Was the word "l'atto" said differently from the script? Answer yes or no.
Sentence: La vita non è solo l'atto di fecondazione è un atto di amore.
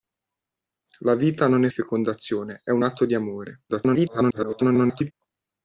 yes